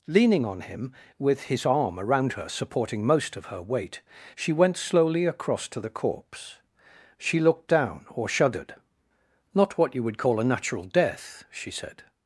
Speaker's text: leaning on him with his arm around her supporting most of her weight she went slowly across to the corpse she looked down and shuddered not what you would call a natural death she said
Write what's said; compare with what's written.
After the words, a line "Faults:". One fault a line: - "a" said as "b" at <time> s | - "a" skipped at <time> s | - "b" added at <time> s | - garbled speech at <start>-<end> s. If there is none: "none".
leaning on him with his arm around her supporting most of her weight she went slowly across to the corpse she looked down or shuddered not what you would call a natural death she said
Faults:
- "and" said as "or" at 8.1 s